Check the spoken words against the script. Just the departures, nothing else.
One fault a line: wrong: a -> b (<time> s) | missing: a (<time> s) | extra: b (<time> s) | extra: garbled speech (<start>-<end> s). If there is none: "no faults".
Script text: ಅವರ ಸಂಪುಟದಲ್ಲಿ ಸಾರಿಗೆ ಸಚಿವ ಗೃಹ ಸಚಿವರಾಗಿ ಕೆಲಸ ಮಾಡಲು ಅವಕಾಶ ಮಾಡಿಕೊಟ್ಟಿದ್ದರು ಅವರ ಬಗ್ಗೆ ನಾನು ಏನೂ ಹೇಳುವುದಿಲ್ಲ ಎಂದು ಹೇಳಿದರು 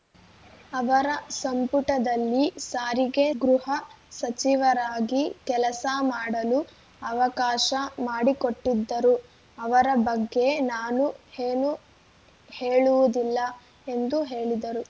missing: ಸಚಿವ (3.2 s)